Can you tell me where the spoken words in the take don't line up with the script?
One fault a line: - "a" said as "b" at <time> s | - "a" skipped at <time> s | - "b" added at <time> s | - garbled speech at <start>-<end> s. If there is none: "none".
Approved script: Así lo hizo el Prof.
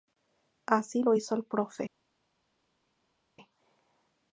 none